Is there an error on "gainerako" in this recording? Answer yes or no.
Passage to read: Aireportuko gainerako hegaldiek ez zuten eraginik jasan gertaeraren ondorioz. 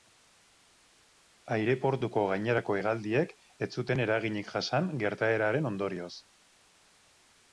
no